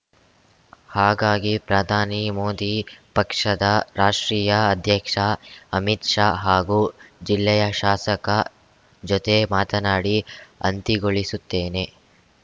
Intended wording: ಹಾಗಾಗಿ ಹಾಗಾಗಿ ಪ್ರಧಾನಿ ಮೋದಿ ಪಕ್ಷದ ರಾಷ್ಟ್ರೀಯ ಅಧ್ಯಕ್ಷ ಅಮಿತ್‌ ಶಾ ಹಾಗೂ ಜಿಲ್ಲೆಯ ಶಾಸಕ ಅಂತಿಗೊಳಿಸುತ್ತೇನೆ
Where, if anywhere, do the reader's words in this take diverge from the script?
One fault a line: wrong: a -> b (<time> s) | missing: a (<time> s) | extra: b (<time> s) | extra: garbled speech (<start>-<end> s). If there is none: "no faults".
missing: ಹಾಗಾಗಿ (1.5 s)
extra: ಜೊತೆ ಮಾತನಾಡಿ (9.0 s)